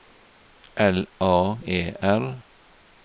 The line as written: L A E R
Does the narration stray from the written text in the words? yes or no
no